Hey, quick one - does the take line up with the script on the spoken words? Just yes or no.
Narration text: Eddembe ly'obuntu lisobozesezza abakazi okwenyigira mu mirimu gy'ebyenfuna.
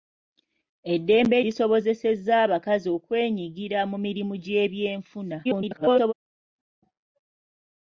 no